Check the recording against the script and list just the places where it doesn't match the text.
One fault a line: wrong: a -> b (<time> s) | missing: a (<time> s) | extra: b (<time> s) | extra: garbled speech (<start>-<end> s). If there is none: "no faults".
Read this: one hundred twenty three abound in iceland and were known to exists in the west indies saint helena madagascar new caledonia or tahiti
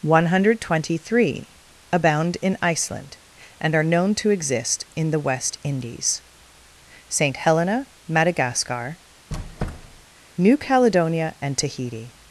wrong: were -> are (3.7 s)
wrong: exists -> exist (4.3 s)
wrong: or -> and (11.4 s)